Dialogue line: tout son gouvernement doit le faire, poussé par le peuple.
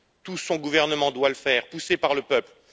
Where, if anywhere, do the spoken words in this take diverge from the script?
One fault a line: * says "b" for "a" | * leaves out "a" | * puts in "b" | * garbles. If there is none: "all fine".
all fine